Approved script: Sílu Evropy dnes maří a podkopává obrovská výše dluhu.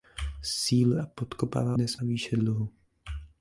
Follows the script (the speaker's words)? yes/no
no